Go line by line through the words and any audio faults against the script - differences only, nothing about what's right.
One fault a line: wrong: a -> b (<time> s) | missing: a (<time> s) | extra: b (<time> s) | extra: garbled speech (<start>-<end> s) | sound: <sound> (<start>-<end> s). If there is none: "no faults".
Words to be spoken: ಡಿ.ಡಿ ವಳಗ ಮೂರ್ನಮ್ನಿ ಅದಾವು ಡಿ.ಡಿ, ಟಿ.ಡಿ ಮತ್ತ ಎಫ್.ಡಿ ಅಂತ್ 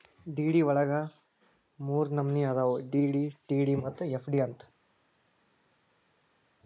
no faults